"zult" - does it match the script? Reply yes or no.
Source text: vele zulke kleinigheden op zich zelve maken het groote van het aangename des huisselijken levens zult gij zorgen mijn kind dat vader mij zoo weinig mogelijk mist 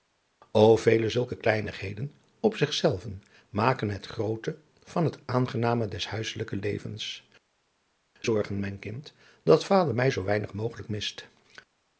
no